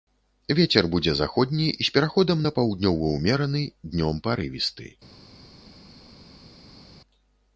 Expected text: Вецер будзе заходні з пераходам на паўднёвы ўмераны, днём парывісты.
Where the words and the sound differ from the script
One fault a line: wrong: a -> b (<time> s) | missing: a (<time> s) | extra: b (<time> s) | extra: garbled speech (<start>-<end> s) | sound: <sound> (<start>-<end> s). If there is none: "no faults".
no faults